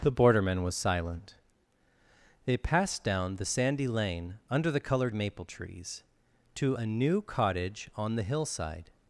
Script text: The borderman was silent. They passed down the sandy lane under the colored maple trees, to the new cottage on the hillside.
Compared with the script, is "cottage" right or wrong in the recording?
right